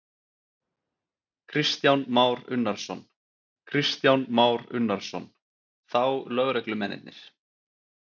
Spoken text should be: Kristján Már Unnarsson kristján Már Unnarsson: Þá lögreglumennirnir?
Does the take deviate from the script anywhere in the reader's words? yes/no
no